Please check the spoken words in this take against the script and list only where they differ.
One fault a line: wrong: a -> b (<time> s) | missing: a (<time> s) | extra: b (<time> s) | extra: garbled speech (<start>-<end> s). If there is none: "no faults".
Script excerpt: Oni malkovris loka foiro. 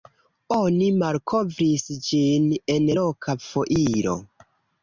extra: ĝin en (2.1 s)